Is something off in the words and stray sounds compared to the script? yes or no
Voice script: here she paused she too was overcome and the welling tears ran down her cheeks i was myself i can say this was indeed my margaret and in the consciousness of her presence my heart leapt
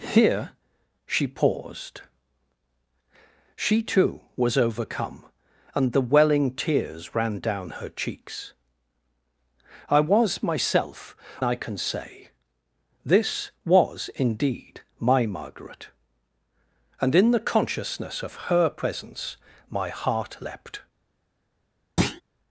yes